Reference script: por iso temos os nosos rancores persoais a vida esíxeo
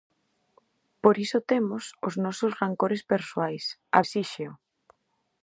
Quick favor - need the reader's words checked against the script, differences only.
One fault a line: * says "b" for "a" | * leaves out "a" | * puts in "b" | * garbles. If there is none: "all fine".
* leaves out "vida"